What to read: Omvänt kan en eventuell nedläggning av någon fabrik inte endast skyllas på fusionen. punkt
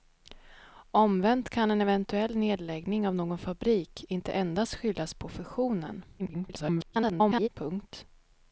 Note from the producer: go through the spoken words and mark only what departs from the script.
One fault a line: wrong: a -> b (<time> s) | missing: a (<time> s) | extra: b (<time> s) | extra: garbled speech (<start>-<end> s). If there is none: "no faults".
extra: garbled speech (6.2-7.5 s)